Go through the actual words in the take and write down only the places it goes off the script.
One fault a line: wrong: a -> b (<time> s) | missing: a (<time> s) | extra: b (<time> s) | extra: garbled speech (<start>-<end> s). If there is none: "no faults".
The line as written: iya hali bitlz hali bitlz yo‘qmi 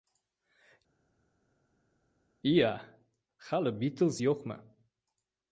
missing: hali bitlz (4.2 s)